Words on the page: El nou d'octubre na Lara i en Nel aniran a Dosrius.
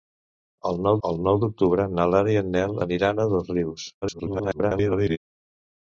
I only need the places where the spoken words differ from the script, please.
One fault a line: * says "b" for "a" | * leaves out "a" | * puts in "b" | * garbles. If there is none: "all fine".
* puts in "el nou"
* garbles